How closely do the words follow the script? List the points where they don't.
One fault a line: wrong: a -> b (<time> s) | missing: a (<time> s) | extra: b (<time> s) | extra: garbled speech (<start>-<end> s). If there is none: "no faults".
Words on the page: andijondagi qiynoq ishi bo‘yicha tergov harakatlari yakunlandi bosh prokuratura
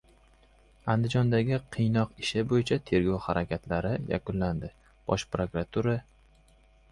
no faults